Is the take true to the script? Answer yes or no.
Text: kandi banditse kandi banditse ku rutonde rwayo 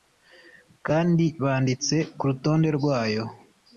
no